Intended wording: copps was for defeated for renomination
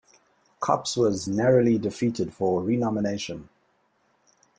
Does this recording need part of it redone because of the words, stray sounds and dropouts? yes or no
yes